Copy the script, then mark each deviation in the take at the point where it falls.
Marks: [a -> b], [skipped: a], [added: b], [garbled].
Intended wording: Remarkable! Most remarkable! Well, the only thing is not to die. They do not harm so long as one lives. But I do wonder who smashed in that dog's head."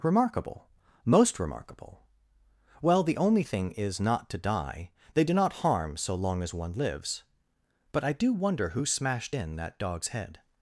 Remarkable! Most remarkable! Well, the only thing is not to die. They do not harm so long as one lives. But I do wonder who smashed in that dog's head."